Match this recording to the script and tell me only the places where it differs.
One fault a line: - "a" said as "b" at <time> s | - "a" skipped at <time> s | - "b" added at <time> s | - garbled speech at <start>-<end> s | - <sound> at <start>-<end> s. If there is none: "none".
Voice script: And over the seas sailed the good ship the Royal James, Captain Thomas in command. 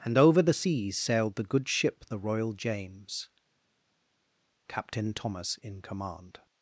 none